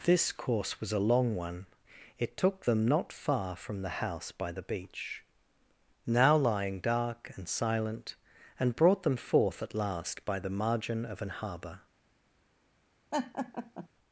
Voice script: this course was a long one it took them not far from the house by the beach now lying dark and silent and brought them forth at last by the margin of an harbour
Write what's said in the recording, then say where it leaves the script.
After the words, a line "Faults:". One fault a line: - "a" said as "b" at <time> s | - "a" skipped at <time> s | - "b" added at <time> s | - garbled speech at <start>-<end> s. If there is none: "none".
this course was a long one it took them not far from the house by the beach now lying dark and silent and brought them forth at last by the margin of an harbour
Faults:
none